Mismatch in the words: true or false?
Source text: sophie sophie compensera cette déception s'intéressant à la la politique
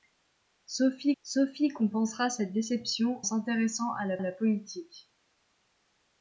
false